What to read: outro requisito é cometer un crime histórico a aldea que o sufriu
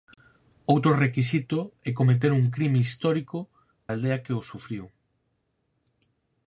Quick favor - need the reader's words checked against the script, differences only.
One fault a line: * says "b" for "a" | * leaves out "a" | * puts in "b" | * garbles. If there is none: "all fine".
all fine